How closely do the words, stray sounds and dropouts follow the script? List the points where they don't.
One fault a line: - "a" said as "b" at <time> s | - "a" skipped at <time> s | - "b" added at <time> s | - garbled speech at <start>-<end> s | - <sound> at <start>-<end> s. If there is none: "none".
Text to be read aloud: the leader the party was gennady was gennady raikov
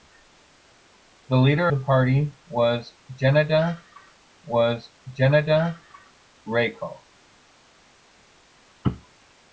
none